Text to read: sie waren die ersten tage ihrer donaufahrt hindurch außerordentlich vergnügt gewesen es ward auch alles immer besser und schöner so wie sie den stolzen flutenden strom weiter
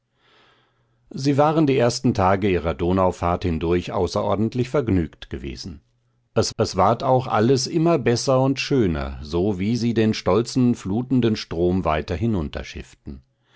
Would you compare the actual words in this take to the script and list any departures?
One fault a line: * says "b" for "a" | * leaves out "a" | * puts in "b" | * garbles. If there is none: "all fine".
* puts in "es"